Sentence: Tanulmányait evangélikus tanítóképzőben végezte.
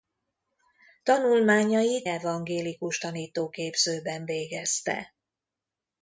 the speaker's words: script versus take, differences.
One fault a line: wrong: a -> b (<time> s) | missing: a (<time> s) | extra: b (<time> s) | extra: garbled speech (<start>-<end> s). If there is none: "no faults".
no faults